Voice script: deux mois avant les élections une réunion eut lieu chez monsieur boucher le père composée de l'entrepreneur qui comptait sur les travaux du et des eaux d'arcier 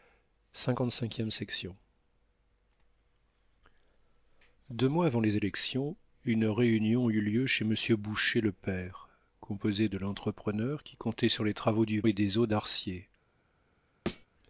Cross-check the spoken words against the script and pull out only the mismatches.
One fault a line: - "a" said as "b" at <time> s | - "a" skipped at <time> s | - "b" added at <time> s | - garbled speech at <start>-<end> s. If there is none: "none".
none